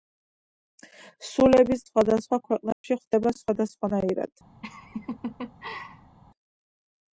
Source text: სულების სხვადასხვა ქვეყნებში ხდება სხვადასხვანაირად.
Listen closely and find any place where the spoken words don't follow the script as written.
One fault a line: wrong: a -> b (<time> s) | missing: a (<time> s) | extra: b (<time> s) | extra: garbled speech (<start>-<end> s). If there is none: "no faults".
no faults